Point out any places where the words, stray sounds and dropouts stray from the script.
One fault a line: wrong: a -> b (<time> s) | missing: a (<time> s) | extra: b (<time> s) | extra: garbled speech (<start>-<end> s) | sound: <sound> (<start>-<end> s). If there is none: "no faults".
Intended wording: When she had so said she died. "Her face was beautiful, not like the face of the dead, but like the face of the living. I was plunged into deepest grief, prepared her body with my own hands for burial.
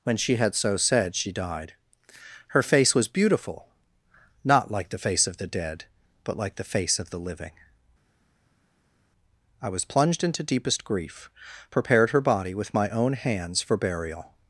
no faults